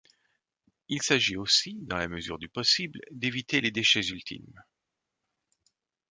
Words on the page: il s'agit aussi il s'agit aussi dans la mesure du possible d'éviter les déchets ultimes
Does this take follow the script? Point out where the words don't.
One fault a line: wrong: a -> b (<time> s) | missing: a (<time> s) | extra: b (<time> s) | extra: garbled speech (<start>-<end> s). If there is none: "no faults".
missing: il s'agit aussi (1.8 s)